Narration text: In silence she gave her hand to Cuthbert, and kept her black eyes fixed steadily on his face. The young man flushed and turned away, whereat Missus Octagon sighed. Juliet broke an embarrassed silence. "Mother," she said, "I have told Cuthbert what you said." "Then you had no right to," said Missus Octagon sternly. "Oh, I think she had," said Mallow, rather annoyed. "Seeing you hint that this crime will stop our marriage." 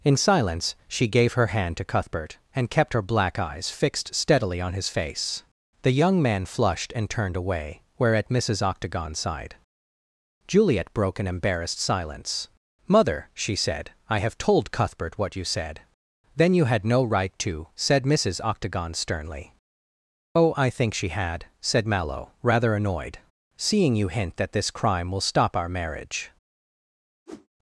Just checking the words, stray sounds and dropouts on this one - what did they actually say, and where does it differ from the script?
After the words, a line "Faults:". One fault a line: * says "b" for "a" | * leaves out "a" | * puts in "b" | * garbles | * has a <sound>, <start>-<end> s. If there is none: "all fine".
In silence she gave her hand to Cuthbert, and kept her black eyes fixed steadily on his face. The young man flushed and turned away, whereat Missus Octagon sighed. Juliet broke an embarrassed silence. "Mother," she said, "I have told Cuthbert what you said." "Then you had no right to," said Missus Octagon sternly. "Oh, I think she had," said Mallow, rather annoyed. "Seeing you hint that this crime will stop our marriage."
Faults:
* has a whoosh, 27.3-27.5 s